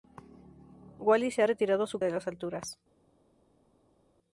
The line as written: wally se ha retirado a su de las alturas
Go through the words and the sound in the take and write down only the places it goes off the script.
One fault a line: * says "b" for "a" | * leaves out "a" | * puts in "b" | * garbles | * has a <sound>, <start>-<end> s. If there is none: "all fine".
all fine